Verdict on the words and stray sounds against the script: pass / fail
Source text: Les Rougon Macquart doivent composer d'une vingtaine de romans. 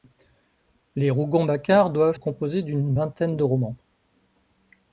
pass